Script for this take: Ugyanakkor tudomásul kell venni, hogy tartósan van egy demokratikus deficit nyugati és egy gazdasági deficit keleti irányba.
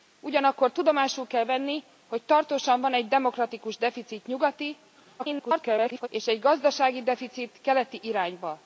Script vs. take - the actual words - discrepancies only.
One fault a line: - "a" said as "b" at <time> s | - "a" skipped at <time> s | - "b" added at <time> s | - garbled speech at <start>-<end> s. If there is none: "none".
- garbled speech at 5.2-6.1 s